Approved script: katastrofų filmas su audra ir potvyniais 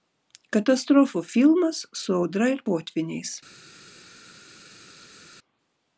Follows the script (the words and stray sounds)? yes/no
yes